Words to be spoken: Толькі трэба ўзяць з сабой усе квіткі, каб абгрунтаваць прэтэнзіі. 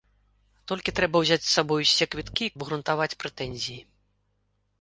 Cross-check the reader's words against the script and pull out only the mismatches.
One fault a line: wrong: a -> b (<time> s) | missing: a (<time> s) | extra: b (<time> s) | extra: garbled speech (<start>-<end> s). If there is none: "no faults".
missing: каб (2.5 s)